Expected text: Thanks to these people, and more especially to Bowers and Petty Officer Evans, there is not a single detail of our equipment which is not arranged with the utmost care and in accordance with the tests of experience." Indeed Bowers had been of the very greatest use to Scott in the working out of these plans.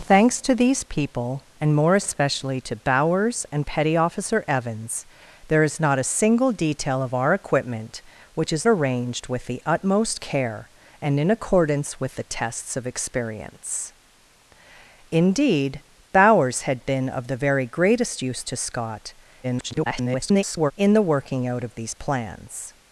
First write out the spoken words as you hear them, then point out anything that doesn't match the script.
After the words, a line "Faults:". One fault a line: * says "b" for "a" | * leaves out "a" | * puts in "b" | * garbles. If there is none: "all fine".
Thanks to these people, and more especially to Bowers and Petty Officer Evans, there is not a single detail of our equipment which is arranged with the utmost care and in accordance with the tests of experience." Indeed Bowers had been of the very greatest use to Scott [garbled] in the working out of these plans.
Faults:
* leaves out "not"
* garbles